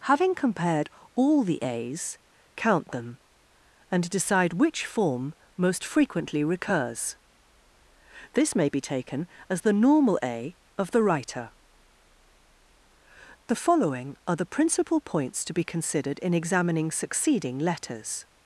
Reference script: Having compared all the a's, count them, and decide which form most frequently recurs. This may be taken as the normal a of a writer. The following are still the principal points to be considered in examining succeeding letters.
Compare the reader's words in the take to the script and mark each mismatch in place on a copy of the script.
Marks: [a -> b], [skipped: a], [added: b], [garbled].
Having compared all the a's, count them, and decide which form most frequently recurs. This may be taken as the normal a of [a -> the] writer. The following are [skipped: still] the principal points to be considered in examining succeeding letters.